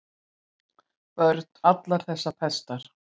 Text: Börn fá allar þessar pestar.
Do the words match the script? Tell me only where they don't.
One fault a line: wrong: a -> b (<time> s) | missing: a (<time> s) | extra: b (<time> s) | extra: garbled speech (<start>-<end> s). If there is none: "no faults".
missing: fá (1.4 s)